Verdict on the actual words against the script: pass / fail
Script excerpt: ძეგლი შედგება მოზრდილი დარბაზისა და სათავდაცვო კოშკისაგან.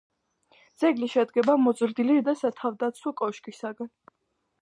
fail